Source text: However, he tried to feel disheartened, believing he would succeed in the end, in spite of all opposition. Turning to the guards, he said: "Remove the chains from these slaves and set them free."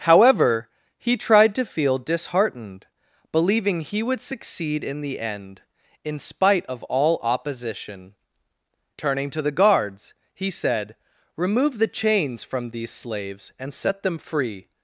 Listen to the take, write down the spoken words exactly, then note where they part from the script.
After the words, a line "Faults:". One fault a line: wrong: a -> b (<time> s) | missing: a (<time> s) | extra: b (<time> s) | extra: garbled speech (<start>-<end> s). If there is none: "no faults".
However, he tried to feel disheartened, believing he would succeed in the end, in spite of all opposition. Turning to the guards, he said: "Remove the chains from these slaves and set them free."
Faults:
no faults